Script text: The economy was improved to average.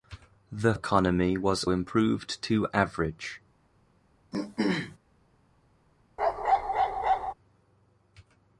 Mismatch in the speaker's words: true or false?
false